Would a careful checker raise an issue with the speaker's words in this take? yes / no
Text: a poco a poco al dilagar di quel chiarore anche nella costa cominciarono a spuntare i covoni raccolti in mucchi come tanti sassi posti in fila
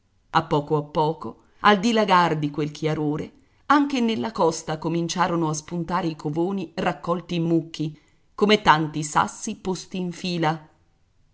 no